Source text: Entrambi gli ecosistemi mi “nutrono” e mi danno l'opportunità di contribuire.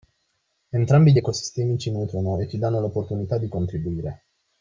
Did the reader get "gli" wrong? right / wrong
right